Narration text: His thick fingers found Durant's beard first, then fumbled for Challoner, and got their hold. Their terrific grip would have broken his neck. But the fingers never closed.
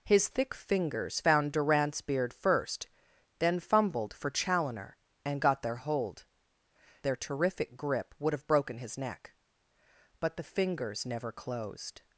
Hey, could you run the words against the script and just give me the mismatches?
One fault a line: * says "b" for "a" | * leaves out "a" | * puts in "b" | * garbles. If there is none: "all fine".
all fine